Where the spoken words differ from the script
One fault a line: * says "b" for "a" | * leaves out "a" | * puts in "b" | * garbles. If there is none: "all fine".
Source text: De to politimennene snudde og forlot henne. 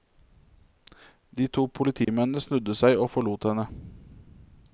* puts in "seg"